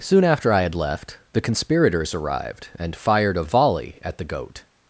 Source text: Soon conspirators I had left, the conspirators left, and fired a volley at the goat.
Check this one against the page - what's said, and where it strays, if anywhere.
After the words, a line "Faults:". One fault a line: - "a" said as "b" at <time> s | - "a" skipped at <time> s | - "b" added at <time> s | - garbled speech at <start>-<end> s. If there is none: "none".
Soon after I had left, the conspirators arrived, and fired a volley at the goat.
Faults:
- "conspirators" said as "after" at 0.2 s
- "left" said as "arrived" at 2.1 s